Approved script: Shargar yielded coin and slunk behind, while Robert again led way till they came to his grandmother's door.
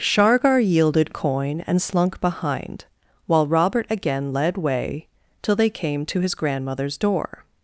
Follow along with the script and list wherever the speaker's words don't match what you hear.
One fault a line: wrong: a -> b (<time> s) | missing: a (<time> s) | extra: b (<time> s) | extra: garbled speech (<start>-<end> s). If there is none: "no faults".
no faults